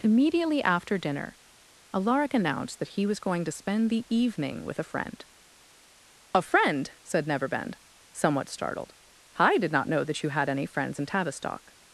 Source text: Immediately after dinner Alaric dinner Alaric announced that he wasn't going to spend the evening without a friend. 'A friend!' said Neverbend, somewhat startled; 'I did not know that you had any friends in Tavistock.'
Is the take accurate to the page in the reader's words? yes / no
no